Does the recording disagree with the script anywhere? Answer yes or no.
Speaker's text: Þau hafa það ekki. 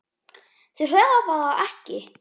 no